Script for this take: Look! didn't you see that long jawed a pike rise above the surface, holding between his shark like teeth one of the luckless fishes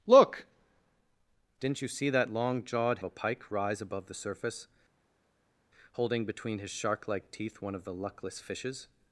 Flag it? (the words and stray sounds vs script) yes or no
no